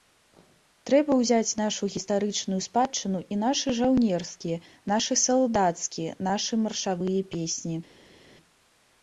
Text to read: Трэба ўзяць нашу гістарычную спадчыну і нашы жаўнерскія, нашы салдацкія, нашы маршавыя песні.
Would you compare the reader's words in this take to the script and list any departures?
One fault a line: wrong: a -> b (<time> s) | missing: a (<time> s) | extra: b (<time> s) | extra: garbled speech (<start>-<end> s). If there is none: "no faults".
no faults